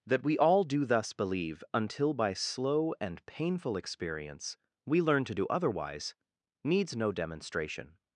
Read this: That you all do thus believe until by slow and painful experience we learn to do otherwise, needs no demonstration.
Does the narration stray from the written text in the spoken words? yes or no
yes